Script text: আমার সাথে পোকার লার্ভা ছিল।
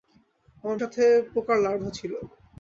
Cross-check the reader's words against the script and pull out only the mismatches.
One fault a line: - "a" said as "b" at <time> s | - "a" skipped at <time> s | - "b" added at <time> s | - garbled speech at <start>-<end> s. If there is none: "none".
none